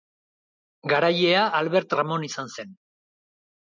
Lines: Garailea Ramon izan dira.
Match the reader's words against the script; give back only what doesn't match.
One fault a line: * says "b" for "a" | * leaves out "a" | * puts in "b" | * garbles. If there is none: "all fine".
* puts in "Albert"
* says "zen" for "dira"